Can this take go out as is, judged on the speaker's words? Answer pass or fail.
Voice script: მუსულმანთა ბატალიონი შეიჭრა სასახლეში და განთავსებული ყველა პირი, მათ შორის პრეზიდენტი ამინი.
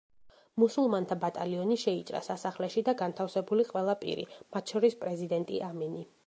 pass